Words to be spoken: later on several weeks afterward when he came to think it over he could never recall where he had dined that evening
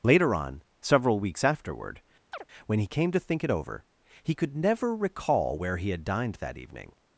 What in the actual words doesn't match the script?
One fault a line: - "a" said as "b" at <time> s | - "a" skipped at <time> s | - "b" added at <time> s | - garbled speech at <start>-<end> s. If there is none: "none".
none